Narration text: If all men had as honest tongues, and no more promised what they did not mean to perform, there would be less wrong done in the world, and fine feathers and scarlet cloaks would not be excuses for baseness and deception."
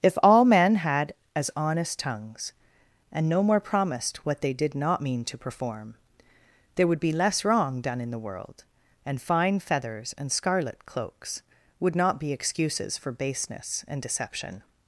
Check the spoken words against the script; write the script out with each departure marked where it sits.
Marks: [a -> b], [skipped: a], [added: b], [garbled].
If all men had as honest tongues, and no more promised what they did not mean to perform, there would be less wrong done in the world, and fine feathers and scarlet cloaks would not be excuses for baseness and deception."